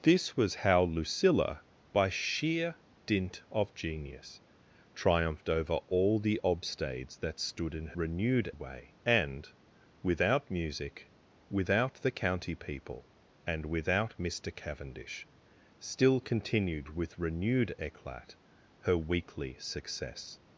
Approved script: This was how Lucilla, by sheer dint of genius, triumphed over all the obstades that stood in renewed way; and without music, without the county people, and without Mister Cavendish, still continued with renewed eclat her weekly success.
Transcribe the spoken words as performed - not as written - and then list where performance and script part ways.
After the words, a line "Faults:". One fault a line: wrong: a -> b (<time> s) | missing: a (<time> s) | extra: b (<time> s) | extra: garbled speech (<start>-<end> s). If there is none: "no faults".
This was how Lucilla, by sheer dint of genius, triumphed over all the obstades that stood in renewed way; and without music, without the county people, and without Mister Cavendish, still continued with renewed eclat her weekly success.
Faults:
no faults